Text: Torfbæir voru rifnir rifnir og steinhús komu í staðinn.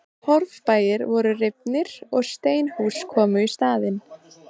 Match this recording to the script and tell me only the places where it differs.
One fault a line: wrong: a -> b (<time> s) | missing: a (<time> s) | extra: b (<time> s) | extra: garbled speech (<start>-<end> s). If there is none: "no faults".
missing: rifnir (1.9 s)